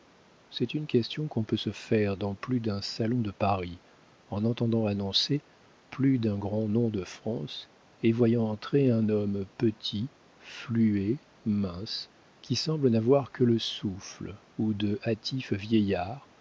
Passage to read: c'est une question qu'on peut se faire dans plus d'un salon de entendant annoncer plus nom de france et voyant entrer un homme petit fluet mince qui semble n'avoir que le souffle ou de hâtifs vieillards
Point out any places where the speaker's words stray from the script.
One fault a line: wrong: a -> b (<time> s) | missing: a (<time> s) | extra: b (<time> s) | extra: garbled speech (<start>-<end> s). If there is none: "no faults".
extra: paris en (3.3 s)
extra: d'un grand (6.2 s)